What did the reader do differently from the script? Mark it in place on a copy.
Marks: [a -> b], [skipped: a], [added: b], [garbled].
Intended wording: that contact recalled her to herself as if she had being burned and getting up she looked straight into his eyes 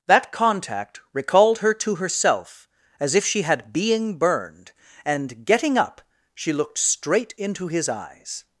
that contact recalled her to herself as if she had being burned and getting up she looked straight into his eyes